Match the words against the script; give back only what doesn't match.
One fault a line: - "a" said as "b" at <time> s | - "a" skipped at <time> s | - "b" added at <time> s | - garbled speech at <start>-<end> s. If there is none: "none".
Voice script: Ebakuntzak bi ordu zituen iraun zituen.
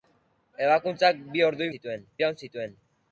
none